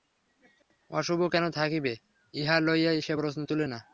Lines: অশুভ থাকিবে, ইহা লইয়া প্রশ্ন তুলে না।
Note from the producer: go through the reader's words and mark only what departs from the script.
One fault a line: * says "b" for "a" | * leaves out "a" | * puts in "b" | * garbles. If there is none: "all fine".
* puts in "কেন"
* puts in "সে"